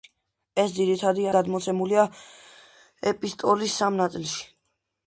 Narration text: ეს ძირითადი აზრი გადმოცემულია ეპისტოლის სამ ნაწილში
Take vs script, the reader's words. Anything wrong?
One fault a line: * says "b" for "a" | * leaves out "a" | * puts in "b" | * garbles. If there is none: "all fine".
* leaves out "აზრი"